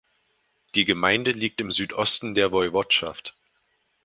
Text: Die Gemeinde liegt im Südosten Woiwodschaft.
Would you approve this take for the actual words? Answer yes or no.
no